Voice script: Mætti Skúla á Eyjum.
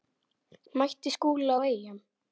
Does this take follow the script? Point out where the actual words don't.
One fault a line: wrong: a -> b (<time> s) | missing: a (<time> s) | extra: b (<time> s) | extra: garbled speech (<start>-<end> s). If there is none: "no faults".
no faults